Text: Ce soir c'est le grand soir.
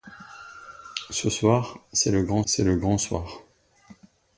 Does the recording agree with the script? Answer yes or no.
no